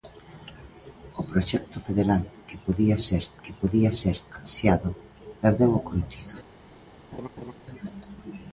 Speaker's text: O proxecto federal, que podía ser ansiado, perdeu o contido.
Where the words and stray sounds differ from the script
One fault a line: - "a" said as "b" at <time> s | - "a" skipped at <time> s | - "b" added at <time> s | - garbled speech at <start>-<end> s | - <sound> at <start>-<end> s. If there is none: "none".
- "que podía ser" added at 3.4 s
- laugh at 7.1-7.5 s